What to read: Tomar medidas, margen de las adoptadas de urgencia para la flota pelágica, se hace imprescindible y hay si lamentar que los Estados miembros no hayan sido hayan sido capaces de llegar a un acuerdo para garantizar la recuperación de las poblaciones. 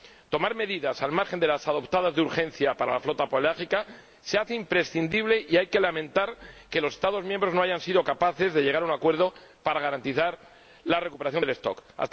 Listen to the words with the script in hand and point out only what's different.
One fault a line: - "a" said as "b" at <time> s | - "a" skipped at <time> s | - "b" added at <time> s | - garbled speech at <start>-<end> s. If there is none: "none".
- "al" added at 1.0 s
- "si" said as "que" at 5.7 s
- "hayan sido" skipped at 8.0 s